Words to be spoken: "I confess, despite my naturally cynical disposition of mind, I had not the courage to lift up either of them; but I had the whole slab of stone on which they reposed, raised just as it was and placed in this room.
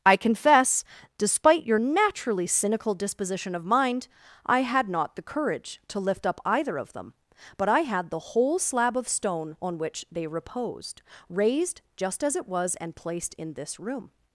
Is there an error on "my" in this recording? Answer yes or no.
yes